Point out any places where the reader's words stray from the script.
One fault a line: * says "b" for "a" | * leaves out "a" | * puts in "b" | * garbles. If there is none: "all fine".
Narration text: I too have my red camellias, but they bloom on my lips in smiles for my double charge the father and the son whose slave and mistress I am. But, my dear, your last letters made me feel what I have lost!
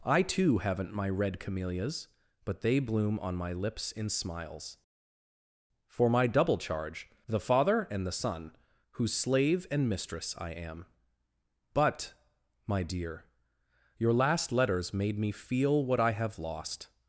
* says "haven't" for "have"